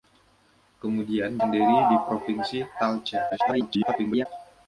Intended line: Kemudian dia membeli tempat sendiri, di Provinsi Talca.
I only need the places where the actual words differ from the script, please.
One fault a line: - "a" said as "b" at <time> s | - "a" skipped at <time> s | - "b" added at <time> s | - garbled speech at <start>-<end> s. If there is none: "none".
- "dia membeli tempat" skipped at 1.4 s
- garbled speech at 3.3-4.3 s